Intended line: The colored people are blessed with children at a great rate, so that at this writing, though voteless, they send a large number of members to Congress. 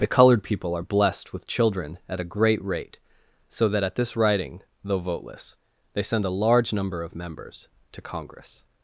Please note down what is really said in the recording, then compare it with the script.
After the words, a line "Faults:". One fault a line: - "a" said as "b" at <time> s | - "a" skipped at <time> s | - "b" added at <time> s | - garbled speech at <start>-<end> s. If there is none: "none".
The colored people are blessed with children at a great rate, so that at this writing, though voteless, they send a large number of members to Congress.
Faults:
none